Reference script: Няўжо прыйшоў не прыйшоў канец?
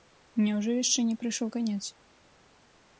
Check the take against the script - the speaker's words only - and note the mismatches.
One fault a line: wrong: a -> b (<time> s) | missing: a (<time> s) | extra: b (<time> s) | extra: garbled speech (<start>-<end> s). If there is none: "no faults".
wrong: прыйшоў -> яшчэ (0.8 s)